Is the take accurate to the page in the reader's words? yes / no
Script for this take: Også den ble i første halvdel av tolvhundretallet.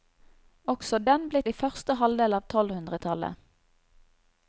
yes